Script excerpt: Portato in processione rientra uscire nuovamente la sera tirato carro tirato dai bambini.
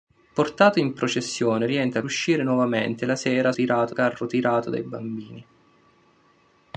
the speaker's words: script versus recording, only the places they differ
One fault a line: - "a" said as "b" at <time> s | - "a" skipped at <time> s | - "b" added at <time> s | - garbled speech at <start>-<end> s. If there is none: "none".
none